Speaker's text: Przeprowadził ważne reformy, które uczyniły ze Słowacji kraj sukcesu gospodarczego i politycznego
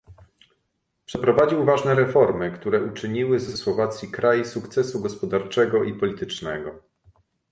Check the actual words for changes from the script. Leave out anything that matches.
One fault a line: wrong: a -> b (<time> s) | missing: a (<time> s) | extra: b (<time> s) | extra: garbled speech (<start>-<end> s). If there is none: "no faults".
extra: ze (3.5 s)